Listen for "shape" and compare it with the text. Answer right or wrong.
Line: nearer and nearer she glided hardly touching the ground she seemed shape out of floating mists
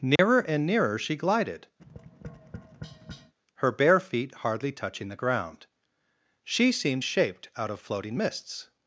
wrong